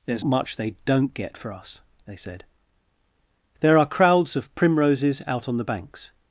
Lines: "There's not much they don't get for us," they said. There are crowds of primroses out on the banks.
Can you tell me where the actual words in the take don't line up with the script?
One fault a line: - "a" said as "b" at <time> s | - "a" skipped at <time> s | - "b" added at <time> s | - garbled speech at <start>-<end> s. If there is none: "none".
- "not" skipped at 0.2 s